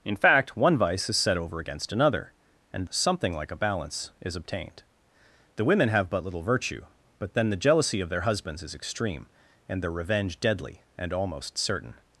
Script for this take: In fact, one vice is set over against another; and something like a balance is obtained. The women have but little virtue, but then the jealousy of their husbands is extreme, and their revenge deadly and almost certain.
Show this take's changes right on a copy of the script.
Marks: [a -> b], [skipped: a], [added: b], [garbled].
In fact, one vice is set over against another; and something like a balance is obtained. The women have but little virtue, but then the jealousy of their husbands is extreme, and their revenge deadly and almost certain.